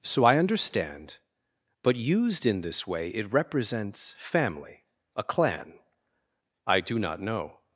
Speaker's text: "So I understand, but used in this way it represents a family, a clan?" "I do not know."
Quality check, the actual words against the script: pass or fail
fail